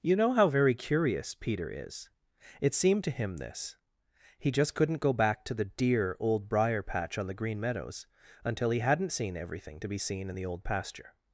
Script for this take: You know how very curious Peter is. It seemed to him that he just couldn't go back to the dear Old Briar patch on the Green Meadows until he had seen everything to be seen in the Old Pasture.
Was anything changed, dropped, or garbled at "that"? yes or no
yes